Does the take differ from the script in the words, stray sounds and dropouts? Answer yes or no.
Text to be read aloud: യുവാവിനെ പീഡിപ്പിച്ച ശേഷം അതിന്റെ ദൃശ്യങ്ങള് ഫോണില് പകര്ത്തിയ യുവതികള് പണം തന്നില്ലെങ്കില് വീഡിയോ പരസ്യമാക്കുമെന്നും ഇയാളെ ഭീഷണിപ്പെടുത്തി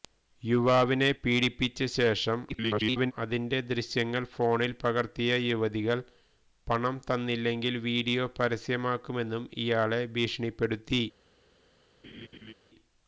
yes